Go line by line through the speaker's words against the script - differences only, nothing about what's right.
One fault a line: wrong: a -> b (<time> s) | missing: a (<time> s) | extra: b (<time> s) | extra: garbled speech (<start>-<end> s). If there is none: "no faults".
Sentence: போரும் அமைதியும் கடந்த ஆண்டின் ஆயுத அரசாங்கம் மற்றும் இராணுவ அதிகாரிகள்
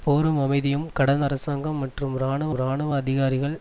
missing: ஆண்டின் ஆயுத (1.2 s)
extra: இராணுவ (2.5 s)